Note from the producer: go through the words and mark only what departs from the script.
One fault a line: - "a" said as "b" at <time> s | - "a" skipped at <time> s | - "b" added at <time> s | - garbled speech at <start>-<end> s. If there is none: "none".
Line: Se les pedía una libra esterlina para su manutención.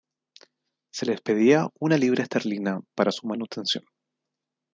none